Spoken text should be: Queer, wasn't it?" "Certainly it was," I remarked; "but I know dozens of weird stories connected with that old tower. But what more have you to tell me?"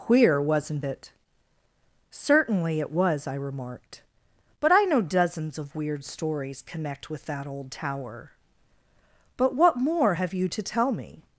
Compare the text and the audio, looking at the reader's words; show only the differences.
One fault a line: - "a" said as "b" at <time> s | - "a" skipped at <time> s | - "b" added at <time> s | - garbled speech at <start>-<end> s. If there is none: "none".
- "connected" said as "connect" at 6.6 s